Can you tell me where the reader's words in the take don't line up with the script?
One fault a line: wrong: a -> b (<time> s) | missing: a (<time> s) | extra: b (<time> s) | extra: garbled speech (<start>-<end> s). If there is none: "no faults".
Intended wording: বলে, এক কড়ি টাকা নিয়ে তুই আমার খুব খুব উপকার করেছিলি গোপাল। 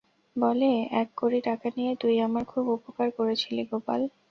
missing: খুব (2.6 s)